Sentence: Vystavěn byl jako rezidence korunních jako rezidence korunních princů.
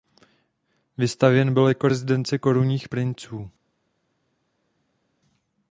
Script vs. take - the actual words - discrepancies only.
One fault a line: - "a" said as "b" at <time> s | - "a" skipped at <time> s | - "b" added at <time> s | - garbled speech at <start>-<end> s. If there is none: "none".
- "jako rezidence korunních" skipped at 2.9 s